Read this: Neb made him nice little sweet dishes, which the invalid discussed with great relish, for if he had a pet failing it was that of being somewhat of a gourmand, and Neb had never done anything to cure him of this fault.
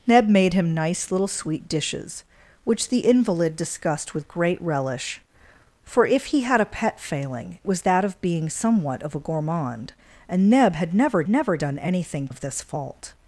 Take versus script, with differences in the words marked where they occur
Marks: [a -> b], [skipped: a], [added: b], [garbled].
Neb made him nice little sweet dishes, which the invalid discussed with great relish, for if he had a pet failing [skipped: it] was that of being somewhat of a gourmand, and Neb had never [added: never] done anything [skipped: to cure him] of this fault.